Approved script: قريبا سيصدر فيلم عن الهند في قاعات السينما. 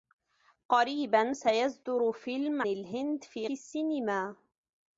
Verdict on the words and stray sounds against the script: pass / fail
fail